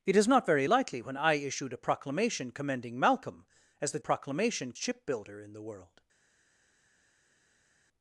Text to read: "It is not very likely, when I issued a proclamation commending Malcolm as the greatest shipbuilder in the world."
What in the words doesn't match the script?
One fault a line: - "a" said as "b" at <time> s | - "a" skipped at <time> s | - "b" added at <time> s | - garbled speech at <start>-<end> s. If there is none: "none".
- "greatest" said as "proclamation" at 4.0 s